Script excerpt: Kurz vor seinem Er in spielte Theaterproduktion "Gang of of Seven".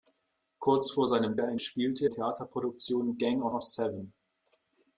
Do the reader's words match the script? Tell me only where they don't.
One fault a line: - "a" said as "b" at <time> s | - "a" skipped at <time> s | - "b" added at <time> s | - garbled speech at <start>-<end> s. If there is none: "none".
none